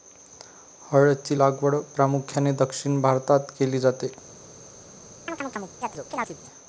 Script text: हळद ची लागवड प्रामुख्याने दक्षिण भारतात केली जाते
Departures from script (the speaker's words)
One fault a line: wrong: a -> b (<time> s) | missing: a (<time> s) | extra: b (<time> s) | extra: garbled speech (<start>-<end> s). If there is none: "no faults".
no faults